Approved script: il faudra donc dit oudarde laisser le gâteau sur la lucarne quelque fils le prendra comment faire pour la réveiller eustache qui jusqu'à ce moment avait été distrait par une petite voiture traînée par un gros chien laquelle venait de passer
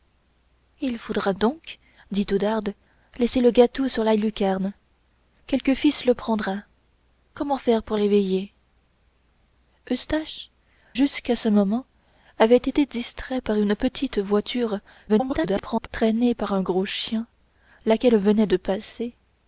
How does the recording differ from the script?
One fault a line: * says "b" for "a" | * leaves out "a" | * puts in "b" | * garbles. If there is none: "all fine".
* leaves out "la"
* leaves out "qui"
* garbles